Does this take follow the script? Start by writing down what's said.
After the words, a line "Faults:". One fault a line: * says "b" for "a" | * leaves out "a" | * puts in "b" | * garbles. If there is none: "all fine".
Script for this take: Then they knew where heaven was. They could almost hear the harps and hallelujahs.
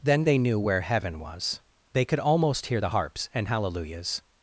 Then they knew where heaven was. They could almost hear the harps and hallelujahs.
Faults:
all fine